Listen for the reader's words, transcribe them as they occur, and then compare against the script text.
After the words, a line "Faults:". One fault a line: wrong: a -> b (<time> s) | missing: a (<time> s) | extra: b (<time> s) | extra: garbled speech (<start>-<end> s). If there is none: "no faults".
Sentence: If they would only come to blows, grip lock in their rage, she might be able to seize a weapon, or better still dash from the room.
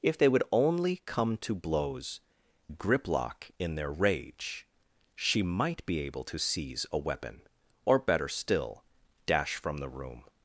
If they would only come to blows, grip lock in their rage, she might be able to seize a weapon, or better still dash from the room.
Faults:
no faults